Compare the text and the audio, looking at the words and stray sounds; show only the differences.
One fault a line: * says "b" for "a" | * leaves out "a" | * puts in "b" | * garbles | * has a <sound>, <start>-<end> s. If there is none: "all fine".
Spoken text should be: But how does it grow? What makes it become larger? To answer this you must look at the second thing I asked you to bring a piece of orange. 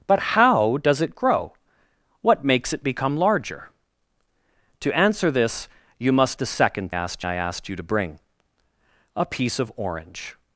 * leaves out "look at"
* says "asked" for "thing"